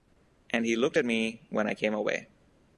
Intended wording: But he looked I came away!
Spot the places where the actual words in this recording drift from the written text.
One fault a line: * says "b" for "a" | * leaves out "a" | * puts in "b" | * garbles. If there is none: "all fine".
* says "And" for "But"
* puts in "at me when"